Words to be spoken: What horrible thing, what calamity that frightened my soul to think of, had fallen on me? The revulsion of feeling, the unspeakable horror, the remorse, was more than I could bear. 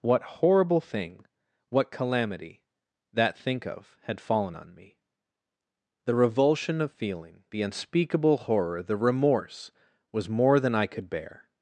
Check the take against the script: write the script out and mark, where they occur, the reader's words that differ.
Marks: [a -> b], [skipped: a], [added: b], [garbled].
What horrible thing, what calamity that [skipped: frightened my soul to] think of, had fallen on me? The revulsion of feeling, the unspeakable horror, the remorse, was more than I could bear.